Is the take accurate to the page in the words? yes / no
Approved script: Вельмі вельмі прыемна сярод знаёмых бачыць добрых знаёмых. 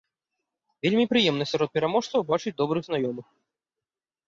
no